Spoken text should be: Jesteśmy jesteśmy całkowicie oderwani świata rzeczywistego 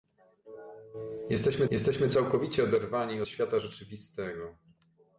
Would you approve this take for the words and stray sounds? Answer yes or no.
yes